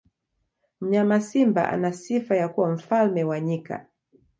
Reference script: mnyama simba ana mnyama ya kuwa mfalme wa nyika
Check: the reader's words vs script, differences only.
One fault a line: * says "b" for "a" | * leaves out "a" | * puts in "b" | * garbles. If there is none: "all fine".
* says "sifa" for "mnyama"